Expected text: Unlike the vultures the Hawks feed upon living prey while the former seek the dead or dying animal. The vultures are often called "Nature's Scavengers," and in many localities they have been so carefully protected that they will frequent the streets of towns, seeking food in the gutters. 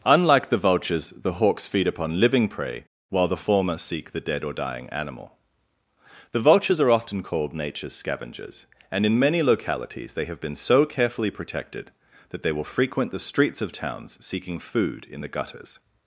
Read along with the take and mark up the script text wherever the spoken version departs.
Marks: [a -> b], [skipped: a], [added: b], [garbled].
Unlike the vultures the Hawks feed upon living prey while the former seek the dead or dying animal. The vultures are often called "Nature's Scavengers," and in many localities they have been so carefully protected that they will frequent the streets of towns, seeking food in the gutters.